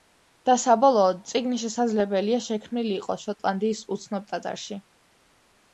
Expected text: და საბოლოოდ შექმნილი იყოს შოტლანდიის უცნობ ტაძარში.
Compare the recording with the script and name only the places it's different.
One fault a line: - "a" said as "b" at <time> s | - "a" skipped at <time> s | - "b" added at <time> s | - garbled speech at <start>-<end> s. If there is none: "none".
- "წიგნი შესაძლებელია" added at 1.3 s